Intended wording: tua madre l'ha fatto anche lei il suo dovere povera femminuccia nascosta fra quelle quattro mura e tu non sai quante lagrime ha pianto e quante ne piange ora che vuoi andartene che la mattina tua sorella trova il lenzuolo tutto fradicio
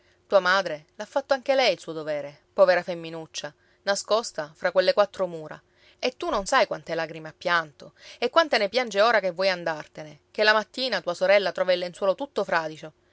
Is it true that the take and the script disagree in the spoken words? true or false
false